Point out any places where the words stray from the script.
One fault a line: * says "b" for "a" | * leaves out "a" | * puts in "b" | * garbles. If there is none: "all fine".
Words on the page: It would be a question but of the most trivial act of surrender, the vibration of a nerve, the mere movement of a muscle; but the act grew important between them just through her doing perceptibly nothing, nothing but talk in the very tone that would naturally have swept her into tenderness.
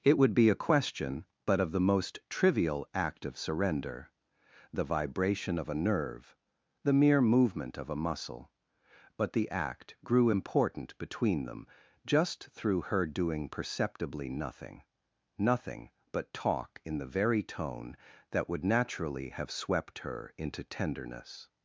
all fine